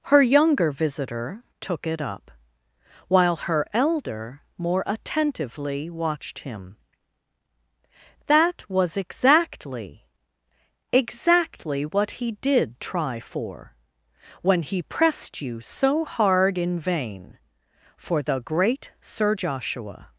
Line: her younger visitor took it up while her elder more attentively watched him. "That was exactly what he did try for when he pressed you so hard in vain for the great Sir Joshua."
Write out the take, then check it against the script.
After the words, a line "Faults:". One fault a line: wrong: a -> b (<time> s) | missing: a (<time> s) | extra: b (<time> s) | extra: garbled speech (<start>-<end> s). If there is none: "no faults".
her younger visitor took it up while her elder more attentively watched him. "That was exactly exactly what he did try for when he pressed you so hard in vain for the great Sir Joshua."
Faults:
extra: exactly (10.9 s)